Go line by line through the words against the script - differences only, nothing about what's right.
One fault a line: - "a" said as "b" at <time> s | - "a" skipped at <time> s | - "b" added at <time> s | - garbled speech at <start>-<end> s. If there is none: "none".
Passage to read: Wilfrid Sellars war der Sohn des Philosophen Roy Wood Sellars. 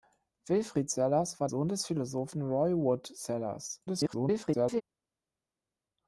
- "der" skipped at 1.5 s
- garbled speech at 3.9-4.8 s